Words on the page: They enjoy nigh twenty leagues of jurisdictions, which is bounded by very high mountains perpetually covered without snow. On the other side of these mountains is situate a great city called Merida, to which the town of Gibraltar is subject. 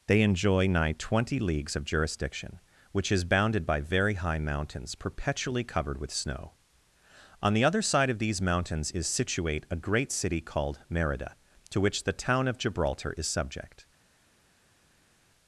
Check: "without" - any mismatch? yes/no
yes